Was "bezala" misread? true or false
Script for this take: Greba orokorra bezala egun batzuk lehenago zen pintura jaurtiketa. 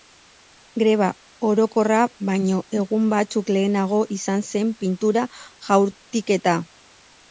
true